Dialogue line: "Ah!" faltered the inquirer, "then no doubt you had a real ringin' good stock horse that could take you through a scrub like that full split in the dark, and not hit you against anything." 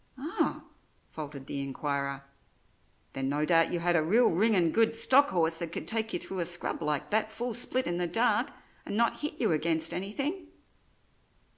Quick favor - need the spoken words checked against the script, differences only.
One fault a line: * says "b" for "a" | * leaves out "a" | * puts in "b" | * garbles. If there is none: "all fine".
all fine